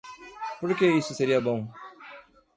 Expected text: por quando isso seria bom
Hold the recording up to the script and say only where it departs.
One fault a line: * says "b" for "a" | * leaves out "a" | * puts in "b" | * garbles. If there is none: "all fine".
* says "que" for "quando"